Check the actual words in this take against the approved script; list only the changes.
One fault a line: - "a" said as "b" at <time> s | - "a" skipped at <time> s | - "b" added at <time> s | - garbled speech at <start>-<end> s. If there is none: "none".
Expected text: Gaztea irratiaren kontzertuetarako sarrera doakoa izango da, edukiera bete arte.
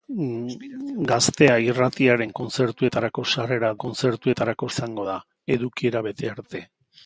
- "doakoa" said as "kontzertuetarako" at 3.8 s